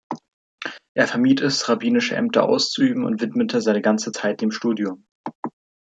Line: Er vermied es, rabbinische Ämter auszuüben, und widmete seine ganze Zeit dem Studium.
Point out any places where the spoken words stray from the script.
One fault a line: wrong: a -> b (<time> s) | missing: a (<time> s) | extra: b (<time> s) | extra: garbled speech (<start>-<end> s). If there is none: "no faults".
no faults